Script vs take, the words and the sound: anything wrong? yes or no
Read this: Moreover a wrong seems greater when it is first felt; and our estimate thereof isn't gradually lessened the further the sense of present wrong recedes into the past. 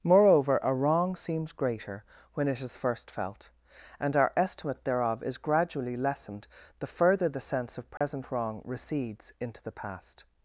yes